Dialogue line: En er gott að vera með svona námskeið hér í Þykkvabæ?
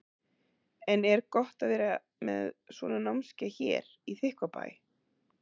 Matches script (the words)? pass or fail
pass